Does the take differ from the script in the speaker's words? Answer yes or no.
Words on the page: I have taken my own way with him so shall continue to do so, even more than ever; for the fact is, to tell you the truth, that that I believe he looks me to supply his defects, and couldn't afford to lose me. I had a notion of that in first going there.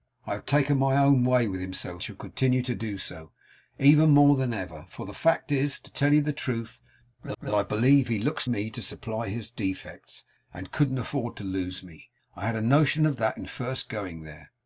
no